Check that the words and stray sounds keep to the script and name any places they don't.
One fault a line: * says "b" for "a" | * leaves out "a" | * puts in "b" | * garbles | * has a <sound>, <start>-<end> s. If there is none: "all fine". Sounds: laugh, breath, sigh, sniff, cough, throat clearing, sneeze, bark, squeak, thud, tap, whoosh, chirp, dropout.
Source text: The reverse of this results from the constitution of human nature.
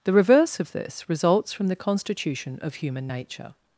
all fine